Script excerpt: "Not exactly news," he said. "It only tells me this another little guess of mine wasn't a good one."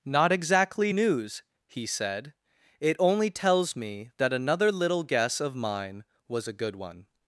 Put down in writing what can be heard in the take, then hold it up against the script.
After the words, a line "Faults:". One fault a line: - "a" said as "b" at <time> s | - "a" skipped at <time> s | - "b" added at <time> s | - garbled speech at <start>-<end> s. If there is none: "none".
"Not exactly news," he said. "It only tells me that another little guess of mine was a good one."
Faults:
- "this" said as "that" at 4.2 s
- "wasn't" said as "was" at 6.3 s